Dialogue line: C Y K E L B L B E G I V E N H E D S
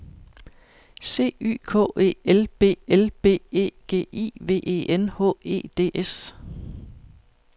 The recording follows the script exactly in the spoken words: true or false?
true